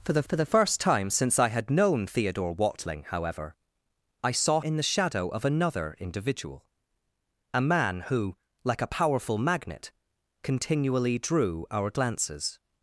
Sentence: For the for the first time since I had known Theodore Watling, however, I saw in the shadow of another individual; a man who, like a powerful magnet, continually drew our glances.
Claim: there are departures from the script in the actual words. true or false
false